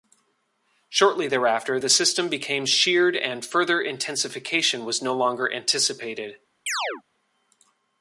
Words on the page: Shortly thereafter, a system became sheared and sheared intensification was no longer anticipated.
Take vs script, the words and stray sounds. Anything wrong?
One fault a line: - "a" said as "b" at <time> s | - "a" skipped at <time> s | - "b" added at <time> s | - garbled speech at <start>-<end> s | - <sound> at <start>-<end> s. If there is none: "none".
- "a" said as "the" at 1.8 s
- "sheared" said as "further" at 3.4 s
- chirp at 6.7-7.0 s